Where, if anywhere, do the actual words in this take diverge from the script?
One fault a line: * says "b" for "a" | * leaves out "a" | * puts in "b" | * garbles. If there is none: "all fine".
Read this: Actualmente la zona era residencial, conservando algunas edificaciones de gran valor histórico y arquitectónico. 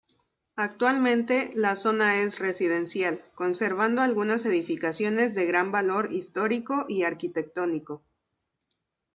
* says "es" for "era"